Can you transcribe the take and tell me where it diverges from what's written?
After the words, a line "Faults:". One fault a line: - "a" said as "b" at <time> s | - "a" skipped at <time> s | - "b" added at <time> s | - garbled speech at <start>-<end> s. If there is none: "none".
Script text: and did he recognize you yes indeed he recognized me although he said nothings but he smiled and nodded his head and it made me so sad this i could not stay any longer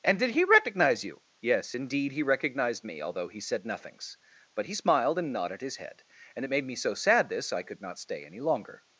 and did he recognize you yes indeed he recognized me although he said nothings but he smiled and nodded his head and it made me so sad this i could not stay any longer
Faults:
none